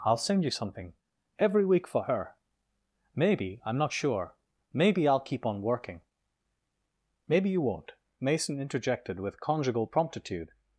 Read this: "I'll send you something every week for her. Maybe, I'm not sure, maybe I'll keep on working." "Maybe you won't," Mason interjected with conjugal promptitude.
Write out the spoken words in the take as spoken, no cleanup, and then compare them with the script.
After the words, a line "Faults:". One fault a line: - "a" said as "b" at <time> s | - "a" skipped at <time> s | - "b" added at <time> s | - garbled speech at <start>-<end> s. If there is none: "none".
"I'll send you something every week for her. Maybe, I'm not sure, maybe I'll keep on working." "Maybe you won't," Mason interjected with conjugal promptitude.
Faults:
none